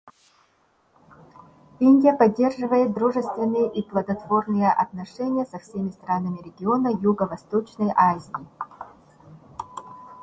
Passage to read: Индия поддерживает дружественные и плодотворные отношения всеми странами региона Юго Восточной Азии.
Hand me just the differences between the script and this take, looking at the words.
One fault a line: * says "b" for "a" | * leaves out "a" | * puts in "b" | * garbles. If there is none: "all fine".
* puts in "со"